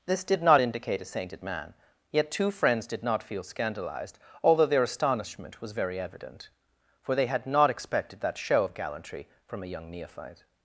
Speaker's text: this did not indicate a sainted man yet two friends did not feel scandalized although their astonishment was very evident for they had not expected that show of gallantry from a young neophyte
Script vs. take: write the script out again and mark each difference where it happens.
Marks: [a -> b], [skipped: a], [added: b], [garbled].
this did not indicate a sainted man yet two friends did not feel scandalized although their astonishment was very evident for they had not expected that show of gallantry from a young neophyte